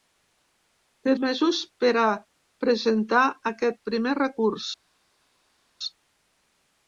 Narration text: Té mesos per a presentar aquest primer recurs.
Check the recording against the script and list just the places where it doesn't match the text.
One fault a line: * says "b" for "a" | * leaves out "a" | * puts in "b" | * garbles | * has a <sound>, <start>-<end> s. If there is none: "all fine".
all fine